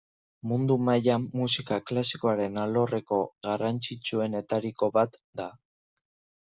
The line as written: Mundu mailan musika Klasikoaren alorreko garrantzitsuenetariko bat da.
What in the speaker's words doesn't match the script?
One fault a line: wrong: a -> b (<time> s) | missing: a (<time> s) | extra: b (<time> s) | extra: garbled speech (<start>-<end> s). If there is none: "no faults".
no faults